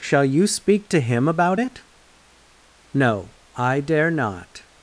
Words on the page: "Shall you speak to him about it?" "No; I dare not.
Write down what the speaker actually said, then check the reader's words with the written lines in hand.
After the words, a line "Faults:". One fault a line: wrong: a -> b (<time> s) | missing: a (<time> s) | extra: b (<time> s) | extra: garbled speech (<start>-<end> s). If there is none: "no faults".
"Shall you speak to him about it?" "No; I dare not.
Faults:
no faults